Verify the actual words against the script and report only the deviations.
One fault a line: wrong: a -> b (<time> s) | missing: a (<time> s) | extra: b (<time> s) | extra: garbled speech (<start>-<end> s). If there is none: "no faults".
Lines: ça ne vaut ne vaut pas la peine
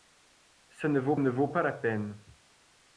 no faults